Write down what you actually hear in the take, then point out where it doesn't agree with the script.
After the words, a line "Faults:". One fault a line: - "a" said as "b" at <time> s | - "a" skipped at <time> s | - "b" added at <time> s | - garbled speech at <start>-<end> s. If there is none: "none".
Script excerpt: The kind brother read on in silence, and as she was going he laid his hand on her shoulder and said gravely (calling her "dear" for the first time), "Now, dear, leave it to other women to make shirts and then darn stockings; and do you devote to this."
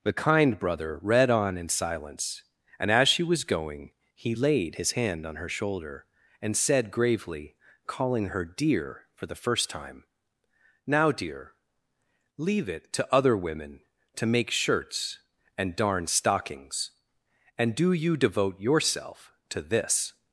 The kind brother read on in silence, and as she was going he laid his hand on her shoulder and said gravely (calling her "dear" for the first time), "Now, dear, leave it to other women to make shirts and darn stockings; and do you devote yourself to this."
Faults:
- "then" skipped at 15.8 s
- "yourself" added at 18.6 s